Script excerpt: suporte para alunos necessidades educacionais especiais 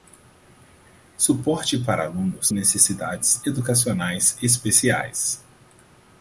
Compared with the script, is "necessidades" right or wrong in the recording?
right